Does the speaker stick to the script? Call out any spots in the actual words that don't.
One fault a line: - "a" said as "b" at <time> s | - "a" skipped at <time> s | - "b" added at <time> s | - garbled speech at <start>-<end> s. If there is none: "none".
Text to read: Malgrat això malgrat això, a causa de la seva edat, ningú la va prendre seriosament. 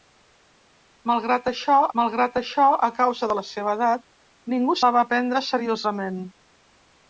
none